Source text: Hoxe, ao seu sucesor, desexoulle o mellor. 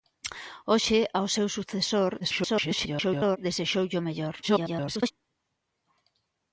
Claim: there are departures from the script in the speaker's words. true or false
true